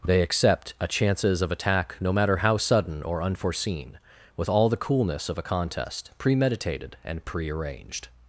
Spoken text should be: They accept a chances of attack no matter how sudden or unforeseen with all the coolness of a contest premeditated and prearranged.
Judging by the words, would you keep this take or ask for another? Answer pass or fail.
pass